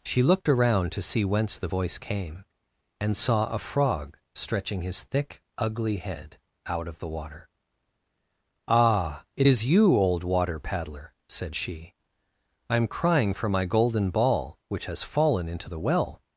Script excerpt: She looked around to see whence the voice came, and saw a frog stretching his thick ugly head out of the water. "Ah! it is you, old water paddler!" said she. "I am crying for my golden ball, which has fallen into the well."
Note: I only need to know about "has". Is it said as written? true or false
true